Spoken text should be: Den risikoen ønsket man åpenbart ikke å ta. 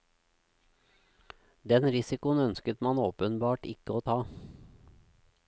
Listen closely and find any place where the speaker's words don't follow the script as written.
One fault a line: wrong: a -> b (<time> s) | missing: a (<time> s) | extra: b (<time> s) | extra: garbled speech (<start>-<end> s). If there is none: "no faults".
no faults